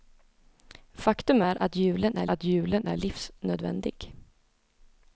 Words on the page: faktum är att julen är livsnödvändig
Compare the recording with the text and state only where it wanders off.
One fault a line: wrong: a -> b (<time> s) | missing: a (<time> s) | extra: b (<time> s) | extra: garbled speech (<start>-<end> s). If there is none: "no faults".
extra: att julen är (2.3 s)